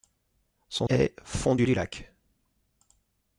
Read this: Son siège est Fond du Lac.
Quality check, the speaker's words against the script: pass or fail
fail